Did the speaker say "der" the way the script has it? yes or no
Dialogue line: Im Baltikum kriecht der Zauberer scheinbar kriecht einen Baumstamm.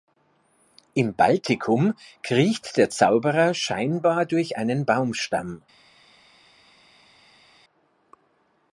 yes